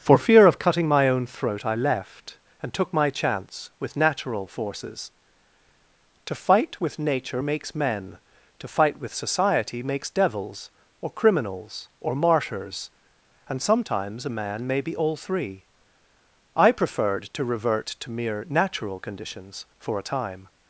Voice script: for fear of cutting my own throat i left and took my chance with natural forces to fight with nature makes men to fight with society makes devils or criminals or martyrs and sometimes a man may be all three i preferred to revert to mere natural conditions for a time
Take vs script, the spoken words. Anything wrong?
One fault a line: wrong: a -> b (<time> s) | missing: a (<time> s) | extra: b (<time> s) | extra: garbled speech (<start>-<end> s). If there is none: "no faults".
no faults